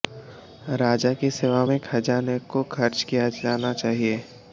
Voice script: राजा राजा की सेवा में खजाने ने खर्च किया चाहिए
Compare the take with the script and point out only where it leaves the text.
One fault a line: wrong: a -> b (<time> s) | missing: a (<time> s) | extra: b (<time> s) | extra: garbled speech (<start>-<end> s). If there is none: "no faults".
missing: राजा (1.1 s)
wrong: ने -> को (2.5 s)
extra: जाना (3.4 s)